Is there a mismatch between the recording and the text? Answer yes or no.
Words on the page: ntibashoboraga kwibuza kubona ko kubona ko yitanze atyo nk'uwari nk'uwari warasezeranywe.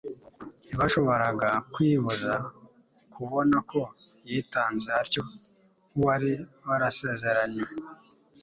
yes